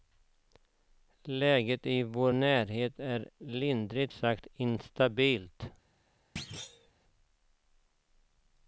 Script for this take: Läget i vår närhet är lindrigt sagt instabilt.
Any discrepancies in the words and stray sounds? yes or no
yes